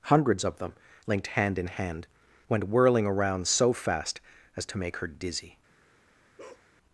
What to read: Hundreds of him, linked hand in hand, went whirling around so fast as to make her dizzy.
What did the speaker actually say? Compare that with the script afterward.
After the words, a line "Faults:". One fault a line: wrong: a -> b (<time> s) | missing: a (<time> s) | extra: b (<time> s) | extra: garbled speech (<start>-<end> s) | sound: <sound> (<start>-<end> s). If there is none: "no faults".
Hundreds of them, linked hand in hand, went whirling around so fast as to make her dizzy.
Faults:
wrong: him -> them (0.6 s)
sound: bark (6.4-6.7 s)